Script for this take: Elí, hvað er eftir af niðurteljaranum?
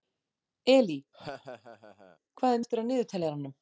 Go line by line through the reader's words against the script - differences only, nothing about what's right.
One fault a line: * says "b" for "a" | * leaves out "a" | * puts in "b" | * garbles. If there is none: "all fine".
all fine